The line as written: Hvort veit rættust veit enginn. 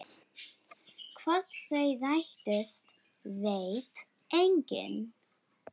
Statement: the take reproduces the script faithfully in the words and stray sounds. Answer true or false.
false